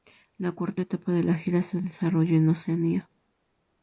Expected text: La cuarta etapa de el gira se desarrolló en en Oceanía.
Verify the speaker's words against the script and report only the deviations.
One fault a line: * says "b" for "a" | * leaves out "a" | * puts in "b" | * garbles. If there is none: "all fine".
* says "la" for "el"
* leaves out "en"